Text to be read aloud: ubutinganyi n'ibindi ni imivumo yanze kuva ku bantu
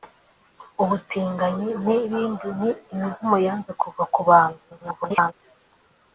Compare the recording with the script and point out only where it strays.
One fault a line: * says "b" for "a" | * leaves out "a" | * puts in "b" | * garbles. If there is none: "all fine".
* garbles